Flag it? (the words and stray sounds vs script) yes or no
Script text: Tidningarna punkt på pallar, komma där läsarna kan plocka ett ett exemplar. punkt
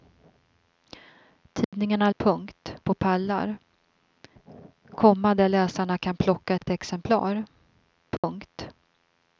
yes